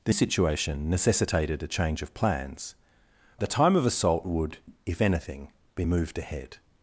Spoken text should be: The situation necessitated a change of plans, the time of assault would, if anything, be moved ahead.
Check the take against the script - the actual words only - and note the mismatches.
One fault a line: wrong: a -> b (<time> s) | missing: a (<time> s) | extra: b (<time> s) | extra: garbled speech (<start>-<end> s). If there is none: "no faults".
no faults